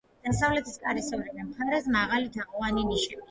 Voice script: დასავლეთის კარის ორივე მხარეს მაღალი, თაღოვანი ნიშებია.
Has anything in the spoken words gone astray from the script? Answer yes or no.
no